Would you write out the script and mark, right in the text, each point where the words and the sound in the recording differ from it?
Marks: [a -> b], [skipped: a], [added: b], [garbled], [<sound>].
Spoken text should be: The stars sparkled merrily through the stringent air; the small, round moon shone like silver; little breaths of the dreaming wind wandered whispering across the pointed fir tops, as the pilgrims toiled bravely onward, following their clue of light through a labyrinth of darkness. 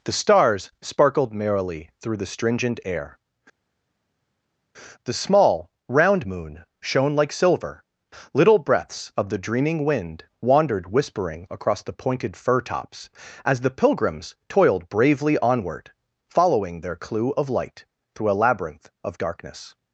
The stars sparkled merrily through the stringent air; the small, round moon shone like silver; little breaths of the dreaming wind wandered whispering across the pointed fir tops, as the pilgrims toiled bravely onward, following their clue of light through a labyrinth of darkness.